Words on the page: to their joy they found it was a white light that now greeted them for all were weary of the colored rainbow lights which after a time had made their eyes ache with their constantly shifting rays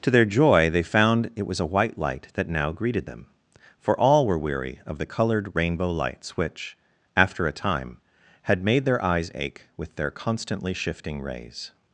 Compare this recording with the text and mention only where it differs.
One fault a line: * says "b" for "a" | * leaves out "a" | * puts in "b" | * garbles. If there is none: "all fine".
all fine